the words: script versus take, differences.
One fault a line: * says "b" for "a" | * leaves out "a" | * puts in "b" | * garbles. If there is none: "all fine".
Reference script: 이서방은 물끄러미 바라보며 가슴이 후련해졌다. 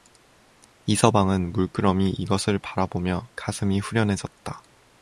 * puts in "이것을"